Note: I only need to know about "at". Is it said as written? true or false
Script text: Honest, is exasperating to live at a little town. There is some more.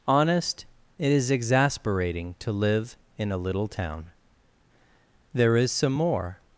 false